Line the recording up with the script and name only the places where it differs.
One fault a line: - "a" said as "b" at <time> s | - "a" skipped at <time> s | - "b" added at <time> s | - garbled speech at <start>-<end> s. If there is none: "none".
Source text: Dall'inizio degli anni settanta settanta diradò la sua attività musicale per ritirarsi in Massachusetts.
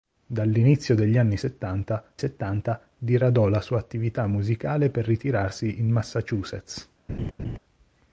none